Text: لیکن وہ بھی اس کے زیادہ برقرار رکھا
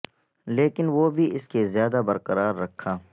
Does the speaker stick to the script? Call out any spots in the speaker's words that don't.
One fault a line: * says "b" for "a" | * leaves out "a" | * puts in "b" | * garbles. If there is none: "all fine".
all fine